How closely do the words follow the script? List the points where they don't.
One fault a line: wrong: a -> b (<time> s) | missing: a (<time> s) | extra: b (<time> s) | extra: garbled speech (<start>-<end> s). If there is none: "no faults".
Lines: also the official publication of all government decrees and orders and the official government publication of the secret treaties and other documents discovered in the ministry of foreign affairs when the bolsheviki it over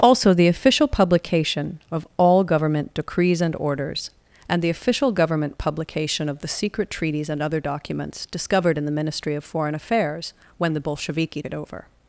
no faults